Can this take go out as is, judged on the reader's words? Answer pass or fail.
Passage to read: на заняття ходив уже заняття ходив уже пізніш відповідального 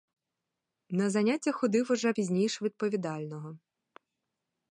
fail